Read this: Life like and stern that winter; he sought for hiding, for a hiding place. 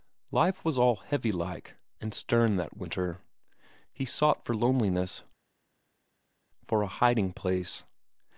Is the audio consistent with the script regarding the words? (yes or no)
no